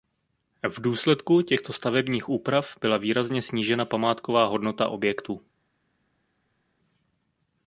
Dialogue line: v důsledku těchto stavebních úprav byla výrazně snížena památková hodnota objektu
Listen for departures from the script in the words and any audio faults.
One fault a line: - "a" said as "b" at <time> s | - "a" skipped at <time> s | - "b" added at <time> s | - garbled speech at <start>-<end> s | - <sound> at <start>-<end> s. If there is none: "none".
none